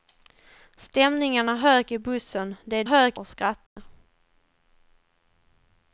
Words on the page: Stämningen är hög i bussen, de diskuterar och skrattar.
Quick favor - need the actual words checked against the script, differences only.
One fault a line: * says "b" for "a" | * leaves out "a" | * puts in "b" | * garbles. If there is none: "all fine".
* says "hög" for "diskuterar"